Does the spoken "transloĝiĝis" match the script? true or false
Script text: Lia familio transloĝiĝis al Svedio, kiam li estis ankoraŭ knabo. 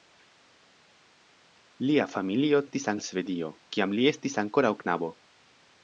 false